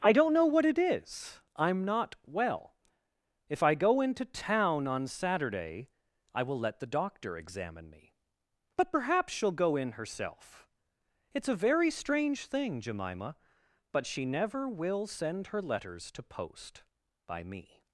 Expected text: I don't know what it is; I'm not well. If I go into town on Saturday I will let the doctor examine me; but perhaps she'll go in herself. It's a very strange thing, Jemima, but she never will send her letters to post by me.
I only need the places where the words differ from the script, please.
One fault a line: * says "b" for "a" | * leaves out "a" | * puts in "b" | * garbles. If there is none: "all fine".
all fine